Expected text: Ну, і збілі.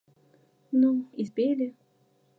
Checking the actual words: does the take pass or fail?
pass